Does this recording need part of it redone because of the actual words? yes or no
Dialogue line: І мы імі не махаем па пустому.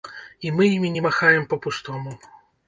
no